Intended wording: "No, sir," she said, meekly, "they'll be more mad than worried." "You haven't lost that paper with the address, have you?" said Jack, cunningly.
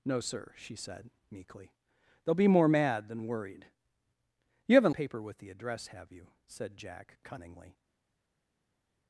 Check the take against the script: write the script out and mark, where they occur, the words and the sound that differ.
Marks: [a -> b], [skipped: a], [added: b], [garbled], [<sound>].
"No, sir," she said, meekly, "they'll be more mad than worried." "You haven't [skipped: lost that] paper with the address, have you?" said Jack, cunningly.